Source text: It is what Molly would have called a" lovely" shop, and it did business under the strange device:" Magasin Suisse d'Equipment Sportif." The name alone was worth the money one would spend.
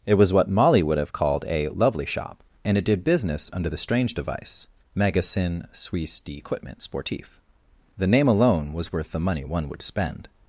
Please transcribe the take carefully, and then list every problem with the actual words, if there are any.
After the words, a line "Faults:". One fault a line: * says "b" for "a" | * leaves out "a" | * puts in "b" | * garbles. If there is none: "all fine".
It was what Molly would have called a" lovely" shop, and it did business under the strange device:" Magasin Suisse d'Equipment Sportif." The name alone was worth the money one would spend.
Faults:
* says "was" for "is"